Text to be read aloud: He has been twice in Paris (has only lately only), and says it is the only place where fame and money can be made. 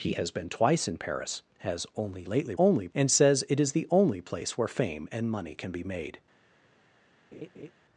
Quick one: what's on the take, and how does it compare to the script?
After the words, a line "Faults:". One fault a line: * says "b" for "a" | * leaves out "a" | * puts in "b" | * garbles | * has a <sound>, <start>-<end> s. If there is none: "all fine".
He has been twice in Paris (has only lately only), and says it is the only place where fame and money can be made.
Faults:
* has a laugh, 7.3-7.7 s